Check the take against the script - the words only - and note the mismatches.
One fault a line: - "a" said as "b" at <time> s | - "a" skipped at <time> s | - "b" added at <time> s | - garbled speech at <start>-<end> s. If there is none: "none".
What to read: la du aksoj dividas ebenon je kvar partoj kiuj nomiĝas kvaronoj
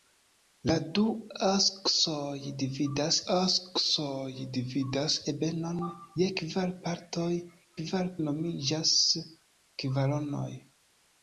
- "aksoj dividas" added at 3.3 s
- "kiuj" said as "kvar" at 7.8 s